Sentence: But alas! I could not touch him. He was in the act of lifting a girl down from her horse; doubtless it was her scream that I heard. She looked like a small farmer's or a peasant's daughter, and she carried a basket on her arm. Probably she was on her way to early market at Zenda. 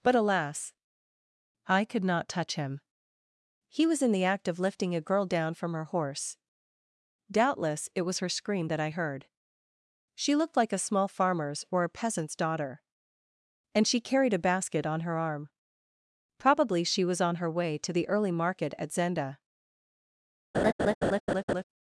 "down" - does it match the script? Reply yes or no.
yes